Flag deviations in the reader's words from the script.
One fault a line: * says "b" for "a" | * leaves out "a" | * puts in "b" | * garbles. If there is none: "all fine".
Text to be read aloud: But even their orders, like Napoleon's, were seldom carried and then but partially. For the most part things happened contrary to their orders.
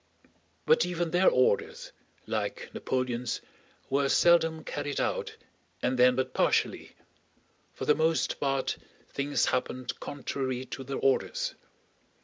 * puts in "out"